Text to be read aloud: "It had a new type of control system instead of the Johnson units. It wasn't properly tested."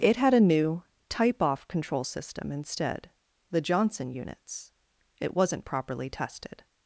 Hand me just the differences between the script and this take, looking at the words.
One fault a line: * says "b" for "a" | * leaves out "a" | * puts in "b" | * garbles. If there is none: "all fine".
* says "off" for "of"
* leaves out "of"